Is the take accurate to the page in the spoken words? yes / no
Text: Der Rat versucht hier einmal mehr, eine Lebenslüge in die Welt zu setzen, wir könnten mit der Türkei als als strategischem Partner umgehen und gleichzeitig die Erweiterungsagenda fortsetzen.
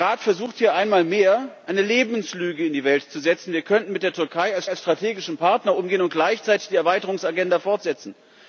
yes